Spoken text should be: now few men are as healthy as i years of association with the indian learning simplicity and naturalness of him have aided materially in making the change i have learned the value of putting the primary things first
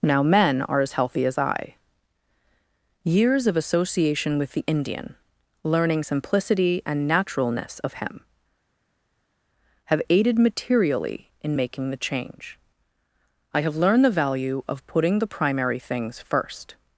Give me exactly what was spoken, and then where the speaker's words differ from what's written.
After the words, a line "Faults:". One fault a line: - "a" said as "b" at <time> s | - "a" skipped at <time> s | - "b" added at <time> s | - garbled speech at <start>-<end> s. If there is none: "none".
now men are as healthy as i years of association with the indian learning simplicity and naturalness of him have aided materially in making the change i have learned the value of putting the primary things first
Faults:
- "few" skipped at 0.2 s